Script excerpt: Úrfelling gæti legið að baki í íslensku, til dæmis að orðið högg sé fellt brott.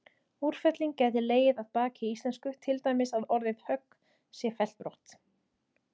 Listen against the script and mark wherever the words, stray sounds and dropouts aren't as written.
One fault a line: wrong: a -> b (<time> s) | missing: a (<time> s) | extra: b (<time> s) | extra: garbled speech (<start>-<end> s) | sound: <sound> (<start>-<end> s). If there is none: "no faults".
no faults